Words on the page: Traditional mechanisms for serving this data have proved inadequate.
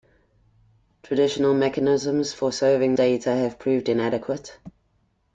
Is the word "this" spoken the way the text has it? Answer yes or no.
no